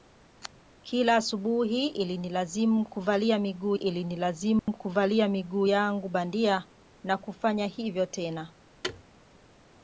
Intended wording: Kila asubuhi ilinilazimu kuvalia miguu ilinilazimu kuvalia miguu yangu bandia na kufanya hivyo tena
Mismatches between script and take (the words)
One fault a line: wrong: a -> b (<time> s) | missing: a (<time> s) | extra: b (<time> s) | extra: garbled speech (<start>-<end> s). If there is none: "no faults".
no faults